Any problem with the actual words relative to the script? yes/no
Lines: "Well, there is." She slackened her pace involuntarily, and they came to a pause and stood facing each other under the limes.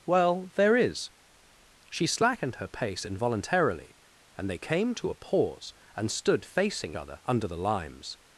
yes